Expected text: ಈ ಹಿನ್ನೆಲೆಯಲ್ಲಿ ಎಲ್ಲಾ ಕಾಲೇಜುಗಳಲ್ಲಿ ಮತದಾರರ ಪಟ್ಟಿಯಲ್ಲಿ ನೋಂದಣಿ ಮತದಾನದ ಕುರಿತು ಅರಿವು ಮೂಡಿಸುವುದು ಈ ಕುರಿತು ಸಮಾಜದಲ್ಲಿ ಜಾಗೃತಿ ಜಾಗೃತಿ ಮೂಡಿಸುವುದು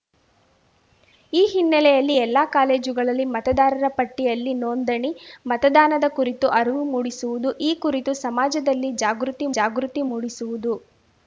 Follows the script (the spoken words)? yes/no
yes